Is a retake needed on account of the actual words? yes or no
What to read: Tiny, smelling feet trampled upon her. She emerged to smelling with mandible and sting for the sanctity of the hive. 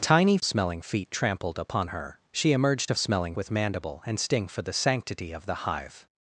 no